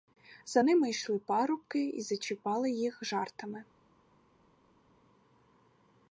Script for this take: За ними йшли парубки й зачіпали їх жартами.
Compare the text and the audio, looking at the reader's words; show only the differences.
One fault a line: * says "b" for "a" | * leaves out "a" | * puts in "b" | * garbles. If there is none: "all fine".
all fine